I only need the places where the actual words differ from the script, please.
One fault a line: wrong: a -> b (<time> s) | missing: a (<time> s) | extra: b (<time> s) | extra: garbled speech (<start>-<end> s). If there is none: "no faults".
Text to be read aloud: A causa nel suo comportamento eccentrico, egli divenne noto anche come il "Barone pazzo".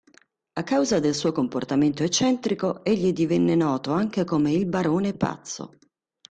wrong: nel -> del (1.0 s)